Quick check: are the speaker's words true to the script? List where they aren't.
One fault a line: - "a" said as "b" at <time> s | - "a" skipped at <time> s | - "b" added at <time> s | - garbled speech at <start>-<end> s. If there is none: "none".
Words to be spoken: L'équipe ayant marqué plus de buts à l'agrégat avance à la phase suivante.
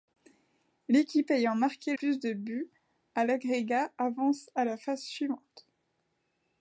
none